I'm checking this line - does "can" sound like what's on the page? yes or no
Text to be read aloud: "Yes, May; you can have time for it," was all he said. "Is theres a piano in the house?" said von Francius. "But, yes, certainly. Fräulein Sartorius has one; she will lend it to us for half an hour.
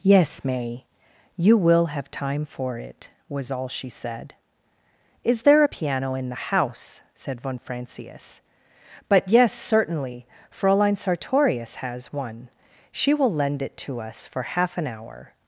no